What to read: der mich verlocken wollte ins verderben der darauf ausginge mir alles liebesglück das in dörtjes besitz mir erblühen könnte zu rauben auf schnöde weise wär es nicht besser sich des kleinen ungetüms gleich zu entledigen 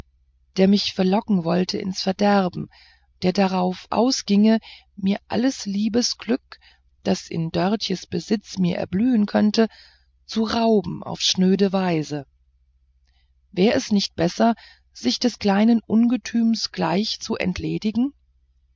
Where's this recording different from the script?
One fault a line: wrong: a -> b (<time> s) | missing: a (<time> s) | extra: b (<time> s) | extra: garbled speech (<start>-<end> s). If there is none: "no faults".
no faults